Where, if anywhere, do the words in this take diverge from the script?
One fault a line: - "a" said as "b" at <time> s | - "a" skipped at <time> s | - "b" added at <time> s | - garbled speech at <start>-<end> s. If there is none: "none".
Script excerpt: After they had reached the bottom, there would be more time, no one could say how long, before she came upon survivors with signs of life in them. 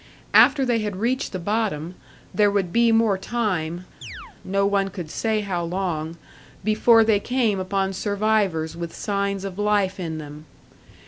- "she" said as "they" at 7.0 s